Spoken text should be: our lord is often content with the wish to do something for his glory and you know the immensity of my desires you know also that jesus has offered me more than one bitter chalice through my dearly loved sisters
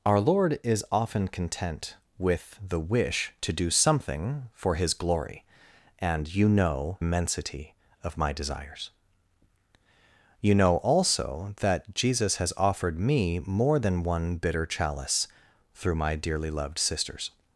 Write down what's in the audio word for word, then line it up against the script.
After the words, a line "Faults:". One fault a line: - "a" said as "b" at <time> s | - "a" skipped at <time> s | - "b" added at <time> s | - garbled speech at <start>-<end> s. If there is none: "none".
our lord is often content with the wish to do something for his glory and you know immensity of my desires you know also that jesus has offered me more than one bitter chalice through my dearly loved sisters
Faults:
- "the" skipped at 7.0 s